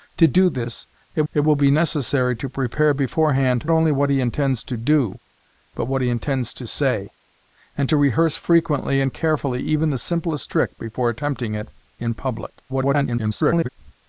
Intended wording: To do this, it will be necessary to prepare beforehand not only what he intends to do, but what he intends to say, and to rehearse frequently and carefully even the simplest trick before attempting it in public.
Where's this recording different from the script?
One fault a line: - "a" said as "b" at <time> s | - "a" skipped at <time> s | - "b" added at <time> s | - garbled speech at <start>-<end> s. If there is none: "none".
- "it" added at 1.3 s
- "not" skipped at 3.7 s
- garbled speech at 12.7-13.7 s